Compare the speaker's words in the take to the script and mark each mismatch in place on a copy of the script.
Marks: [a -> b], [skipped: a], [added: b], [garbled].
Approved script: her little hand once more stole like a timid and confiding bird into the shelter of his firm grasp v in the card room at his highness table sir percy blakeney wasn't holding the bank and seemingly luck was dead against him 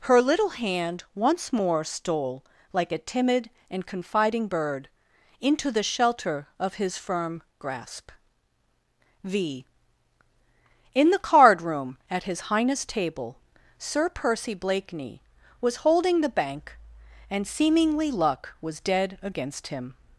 her little hand once more stole like a timid and confiding bird into the shelter of his firm grasp v in the card room at his highness table sir percy blakeney [wasn't -> was] holding the bank and seemingly luck was dead against him